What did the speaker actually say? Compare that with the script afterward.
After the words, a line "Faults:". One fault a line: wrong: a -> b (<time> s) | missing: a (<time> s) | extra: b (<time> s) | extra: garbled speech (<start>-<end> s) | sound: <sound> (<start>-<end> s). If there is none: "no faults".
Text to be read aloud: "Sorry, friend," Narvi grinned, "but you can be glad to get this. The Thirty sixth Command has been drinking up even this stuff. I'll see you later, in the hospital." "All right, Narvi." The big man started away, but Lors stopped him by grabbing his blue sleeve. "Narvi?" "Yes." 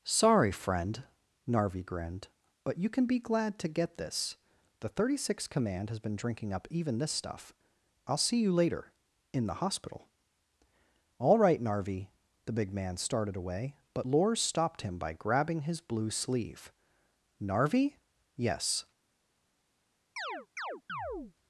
"Sorry, friend," Narvi grinned, "but you can be glad to get this. The Thirty sixth Command has been drinking up even this stuff. I'll see you later, in the hospital." "All right, Narvi." The big man started away, but Lors stopped him by grabbing his blue sleeve. "Narvi?" "Yes."
Faults:
sound: chirp (20.2-21.3 s)